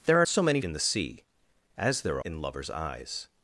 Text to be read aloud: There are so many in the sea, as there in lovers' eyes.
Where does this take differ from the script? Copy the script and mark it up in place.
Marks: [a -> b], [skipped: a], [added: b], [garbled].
There are so many in the sea, as there in lovers' eyes.